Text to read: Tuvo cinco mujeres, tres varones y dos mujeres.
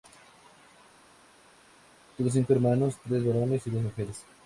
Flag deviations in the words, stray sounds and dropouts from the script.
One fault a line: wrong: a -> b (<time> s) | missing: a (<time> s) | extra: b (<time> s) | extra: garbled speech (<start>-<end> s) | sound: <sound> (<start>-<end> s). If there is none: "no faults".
wrong: mujeres -> hermanos (2.5 s)